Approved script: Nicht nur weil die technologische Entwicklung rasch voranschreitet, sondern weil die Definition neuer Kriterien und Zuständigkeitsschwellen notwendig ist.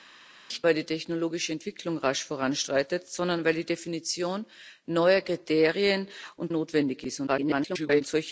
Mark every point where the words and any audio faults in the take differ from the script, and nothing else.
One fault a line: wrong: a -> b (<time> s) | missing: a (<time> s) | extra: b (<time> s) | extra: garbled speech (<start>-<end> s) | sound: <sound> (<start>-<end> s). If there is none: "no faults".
missing: nur (0.7 s)
missing: Zuständigkeitsschwellen (6.5 s)
extra: garbled speech (7.3-8.0 s)